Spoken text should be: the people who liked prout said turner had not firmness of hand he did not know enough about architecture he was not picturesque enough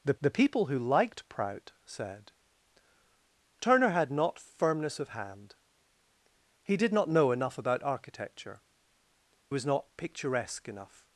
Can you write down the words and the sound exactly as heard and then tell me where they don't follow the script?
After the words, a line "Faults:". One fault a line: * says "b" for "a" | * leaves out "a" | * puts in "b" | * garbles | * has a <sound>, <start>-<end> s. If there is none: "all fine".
the the people who liked prout said turner had not firmness of hand he did not know enough about architecture was not picturesque enough
Faults:
* puts in "the"
* leaves out "he"